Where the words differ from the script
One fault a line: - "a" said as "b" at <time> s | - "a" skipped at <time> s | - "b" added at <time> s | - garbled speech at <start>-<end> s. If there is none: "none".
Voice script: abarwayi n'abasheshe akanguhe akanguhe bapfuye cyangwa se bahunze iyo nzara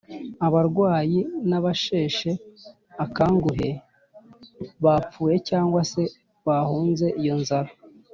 - "akanguhe" skipped at 3.7 s